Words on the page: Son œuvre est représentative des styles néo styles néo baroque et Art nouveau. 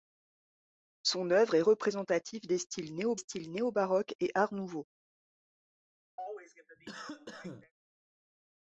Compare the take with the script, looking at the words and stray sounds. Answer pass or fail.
fail